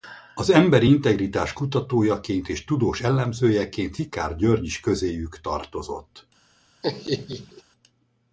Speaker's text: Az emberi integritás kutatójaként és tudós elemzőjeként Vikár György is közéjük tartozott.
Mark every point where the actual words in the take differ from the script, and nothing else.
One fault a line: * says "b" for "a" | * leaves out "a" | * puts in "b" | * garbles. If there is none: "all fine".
all fine